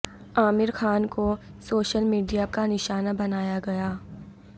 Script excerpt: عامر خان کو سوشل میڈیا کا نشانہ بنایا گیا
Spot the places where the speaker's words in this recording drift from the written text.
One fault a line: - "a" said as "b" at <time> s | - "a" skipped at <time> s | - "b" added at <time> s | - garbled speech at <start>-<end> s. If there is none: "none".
none